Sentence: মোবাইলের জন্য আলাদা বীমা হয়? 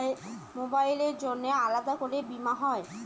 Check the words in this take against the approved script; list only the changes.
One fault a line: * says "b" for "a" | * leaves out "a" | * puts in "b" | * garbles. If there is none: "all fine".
* puts in "করে"